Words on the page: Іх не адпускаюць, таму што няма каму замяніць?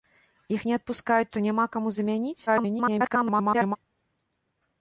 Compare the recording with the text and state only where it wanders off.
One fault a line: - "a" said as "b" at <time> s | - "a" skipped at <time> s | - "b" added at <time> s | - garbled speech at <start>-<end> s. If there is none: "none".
- "таму" skipped at 1.3 s
- garbled speech at 2.5-3.8 s